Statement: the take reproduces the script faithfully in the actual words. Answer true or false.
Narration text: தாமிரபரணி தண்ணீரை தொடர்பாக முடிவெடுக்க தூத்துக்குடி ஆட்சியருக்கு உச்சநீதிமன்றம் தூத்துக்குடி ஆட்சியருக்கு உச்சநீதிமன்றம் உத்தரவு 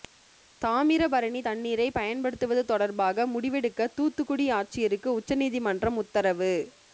false